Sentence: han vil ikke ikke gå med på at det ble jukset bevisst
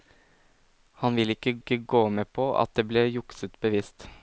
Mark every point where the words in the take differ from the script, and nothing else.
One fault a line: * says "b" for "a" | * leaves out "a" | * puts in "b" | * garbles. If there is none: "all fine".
all fine